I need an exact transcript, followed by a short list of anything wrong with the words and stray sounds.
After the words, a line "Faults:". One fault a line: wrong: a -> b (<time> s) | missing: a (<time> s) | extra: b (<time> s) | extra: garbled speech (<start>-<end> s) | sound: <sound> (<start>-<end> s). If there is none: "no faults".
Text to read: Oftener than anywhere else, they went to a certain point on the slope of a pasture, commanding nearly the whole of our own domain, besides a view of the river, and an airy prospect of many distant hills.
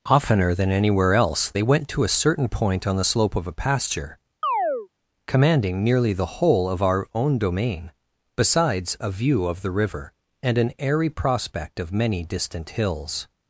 Oftener than anywhere else, they went to a certain point on the slope of a pasture, commanding nearly the whole of our own domain, besides a view of the river, and an airy prospect of many distant hills.
Faults:
sound: chirp (4.4-4.9 s)